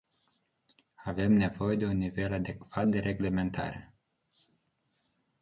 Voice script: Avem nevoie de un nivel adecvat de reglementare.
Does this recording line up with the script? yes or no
yes